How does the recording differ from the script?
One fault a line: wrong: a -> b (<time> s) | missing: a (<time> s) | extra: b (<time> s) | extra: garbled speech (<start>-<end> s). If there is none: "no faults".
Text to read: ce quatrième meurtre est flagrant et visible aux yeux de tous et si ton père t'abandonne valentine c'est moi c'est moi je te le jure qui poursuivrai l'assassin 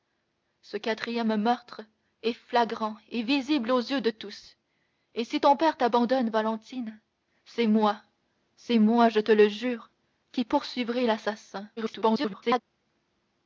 extra: garbled speech (11.8-12.6 s)